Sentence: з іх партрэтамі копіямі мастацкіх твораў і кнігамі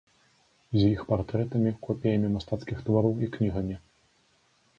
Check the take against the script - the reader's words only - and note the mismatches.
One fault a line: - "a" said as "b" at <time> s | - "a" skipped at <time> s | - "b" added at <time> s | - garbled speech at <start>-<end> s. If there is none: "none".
none